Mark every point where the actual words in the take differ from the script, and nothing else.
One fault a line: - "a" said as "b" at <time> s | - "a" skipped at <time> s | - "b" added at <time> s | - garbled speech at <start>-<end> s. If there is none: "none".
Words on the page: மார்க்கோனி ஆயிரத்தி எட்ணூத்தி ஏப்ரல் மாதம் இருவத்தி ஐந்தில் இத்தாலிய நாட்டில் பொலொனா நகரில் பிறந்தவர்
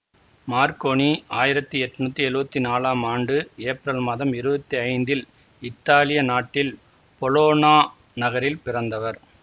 - "எழுவத்தி நாலாம் ஆண்டு" added at 2.3 s